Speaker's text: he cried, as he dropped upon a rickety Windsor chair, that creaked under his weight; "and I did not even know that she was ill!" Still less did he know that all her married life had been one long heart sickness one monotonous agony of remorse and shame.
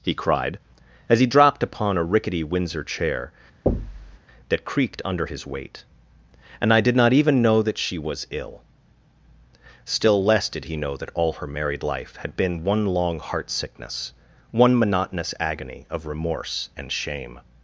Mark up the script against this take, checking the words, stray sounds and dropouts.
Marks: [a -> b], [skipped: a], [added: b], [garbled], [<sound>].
he cried, as he dropped upon a rickety Windsor chair, [thud] that creaked under his weight; "and I did not even know that she was ill!" Still less did he know that all her married life had been one long heart sickness one monotonous agony of remorse and shame.